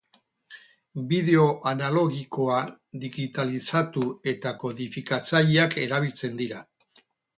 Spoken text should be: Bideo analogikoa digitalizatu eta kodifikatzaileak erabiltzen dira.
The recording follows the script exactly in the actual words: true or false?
true